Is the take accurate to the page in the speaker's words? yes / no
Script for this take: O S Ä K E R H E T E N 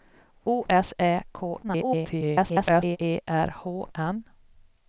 no